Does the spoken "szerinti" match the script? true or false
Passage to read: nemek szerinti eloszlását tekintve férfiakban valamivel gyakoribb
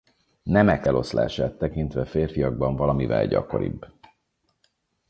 false